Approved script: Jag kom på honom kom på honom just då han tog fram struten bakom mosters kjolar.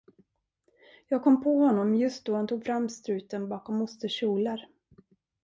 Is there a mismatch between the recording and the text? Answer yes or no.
yes